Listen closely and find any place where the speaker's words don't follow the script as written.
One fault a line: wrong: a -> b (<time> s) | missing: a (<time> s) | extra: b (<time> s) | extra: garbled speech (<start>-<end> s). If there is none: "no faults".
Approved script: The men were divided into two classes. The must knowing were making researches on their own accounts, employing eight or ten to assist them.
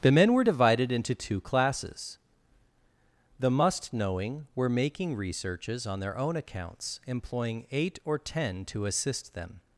no faults